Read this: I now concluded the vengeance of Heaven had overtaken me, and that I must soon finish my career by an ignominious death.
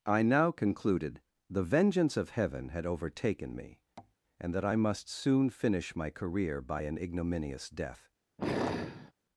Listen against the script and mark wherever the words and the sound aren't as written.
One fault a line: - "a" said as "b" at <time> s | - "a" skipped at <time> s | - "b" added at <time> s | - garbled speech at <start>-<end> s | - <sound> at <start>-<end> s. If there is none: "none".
- tap at 4.0-4.2 s
- sigh at 8.4-9.1 s